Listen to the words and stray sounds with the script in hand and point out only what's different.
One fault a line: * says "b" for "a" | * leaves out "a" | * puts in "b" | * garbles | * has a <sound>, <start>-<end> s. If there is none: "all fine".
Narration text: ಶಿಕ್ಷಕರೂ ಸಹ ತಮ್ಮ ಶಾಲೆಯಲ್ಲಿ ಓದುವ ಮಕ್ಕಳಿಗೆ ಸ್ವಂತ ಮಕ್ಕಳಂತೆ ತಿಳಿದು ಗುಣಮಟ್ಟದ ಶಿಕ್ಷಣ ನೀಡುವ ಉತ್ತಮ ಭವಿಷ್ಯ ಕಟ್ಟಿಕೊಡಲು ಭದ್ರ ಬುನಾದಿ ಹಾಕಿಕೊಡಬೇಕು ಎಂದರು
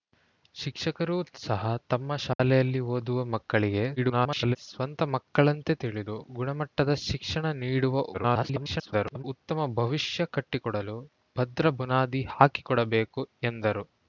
* has a dropout, 2.3-2.4 s
* garbles
* garbles